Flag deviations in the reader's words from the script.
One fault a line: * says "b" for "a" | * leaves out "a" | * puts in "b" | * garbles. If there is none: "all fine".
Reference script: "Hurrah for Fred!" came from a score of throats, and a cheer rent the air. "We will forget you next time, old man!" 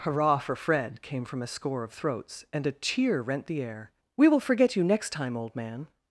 all fine